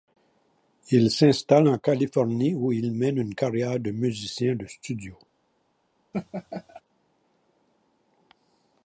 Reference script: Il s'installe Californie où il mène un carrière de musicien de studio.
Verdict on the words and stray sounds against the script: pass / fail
fail